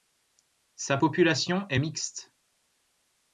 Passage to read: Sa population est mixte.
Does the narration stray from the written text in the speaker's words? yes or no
no